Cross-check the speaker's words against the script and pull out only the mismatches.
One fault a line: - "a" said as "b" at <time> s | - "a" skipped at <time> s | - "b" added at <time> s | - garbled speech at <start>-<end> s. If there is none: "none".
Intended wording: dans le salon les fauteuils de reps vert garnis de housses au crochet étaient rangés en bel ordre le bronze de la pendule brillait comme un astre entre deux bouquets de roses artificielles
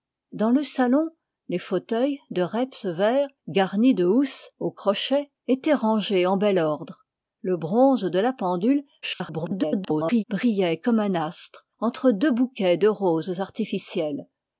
- garbled speech at 9.0-10.2 s